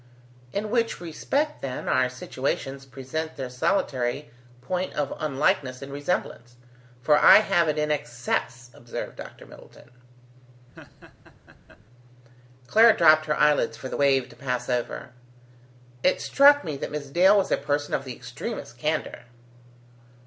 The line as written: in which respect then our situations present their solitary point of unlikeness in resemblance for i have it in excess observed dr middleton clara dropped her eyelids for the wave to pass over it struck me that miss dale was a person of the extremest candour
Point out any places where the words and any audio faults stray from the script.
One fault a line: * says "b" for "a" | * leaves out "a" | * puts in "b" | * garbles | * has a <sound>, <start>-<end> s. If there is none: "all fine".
* has a laugh, 10.8-11.8 s